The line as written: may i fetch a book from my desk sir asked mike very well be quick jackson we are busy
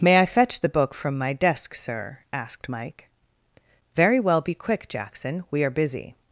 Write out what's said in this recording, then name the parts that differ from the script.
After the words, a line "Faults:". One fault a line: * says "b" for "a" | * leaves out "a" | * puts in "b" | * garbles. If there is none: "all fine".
may i fetch the book from my desk sir asked mike very well be quick jackson we are busy
Faults:
* says "the" for "a"